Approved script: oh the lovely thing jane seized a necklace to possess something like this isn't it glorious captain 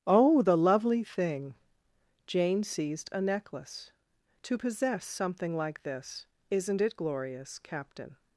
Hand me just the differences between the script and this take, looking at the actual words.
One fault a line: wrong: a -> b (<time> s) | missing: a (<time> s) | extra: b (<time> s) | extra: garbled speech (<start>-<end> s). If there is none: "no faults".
no faults